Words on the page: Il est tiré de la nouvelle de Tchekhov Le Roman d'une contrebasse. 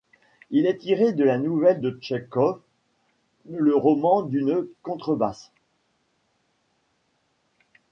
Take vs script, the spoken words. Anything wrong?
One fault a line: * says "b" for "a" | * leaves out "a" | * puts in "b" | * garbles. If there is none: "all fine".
all fine